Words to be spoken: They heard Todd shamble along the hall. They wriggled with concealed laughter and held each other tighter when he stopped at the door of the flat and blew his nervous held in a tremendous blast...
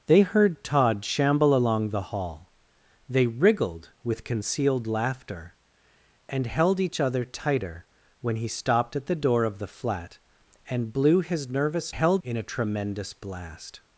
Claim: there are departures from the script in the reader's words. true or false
false